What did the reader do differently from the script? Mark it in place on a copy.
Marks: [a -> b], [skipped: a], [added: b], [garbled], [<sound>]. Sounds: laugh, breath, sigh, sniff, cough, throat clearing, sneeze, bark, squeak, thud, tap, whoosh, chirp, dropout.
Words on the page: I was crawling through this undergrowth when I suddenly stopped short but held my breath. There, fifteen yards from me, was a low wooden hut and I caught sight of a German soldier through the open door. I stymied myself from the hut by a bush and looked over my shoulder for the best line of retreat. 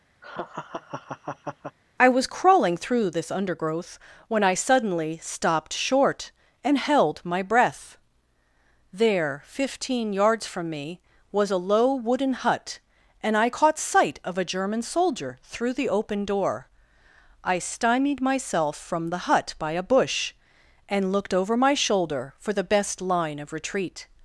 [laugh] I was crawling through this undergrowth when I suddenly stopped short [but -> and] held my breath. There, fifteen yards from me, was a low wooden hut and I caught sight of a German soldier through the open door. I stymied myself from the hut by a bush and looked over my shoulder for the best line of retreat.